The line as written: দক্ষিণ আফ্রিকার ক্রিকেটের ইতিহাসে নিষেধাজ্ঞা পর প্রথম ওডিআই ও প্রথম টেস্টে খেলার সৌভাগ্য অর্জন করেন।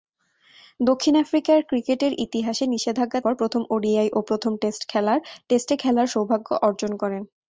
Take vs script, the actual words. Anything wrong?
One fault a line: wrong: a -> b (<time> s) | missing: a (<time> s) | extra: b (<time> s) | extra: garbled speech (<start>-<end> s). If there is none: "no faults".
no faults